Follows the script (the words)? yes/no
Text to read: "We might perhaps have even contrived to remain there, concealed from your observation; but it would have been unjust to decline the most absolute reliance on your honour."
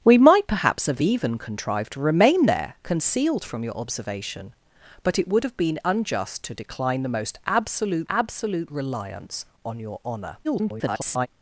no